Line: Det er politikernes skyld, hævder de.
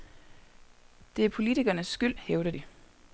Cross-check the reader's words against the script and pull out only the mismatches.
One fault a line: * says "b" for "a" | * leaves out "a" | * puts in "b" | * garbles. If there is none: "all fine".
all fine